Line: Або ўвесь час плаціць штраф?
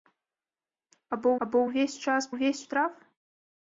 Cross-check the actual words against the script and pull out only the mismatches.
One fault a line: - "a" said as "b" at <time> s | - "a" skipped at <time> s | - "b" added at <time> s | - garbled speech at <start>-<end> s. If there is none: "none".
- "або" added at 1.5 s
- "плаціць" said as "ўвесь" at 2.3 s